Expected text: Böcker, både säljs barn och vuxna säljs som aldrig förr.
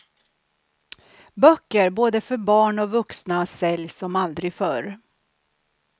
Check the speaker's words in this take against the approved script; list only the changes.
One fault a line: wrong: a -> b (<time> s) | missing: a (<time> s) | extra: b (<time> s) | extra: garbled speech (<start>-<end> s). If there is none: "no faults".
wrong: säljs -> för (2.2 s)